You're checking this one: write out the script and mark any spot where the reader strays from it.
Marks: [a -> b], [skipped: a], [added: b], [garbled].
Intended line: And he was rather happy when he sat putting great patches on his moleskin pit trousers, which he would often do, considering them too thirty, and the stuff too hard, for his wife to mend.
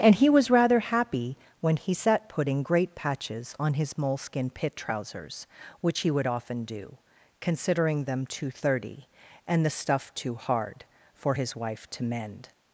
And he was rather happy when he sat putting great patches on his moleskin pit trousers, which he would often do, considering them too thirty, and the stuff too hard, for his wife to mend.